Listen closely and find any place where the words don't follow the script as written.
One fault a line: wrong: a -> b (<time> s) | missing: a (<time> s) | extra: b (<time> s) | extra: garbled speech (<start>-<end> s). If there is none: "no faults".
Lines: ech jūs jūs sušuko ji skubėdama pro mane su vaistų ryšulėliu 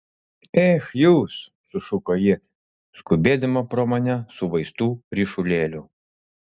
missing: jūs (1.4 s)